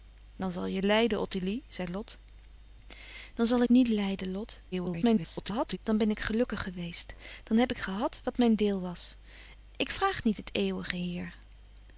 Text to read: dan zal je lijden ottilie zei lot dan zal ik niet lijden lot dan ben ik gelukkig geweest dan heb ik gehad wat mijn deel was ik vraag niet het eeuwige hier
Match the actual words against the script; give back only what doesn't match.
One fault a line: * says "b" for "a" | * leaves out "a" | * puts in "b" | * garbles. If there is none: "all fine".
* leaves out "ik"
* garbles